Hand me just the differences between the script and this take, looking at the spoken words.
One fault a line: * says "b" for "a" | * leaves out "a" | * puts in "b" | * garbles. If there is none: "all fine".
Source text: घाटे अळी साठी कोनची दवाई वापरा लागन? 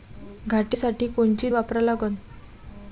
* leaves out "अळी"
* leaves out "दवाई"